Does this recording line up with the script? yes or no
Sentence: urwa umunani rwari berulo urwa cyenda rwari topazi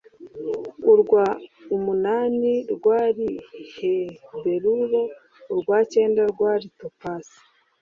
yes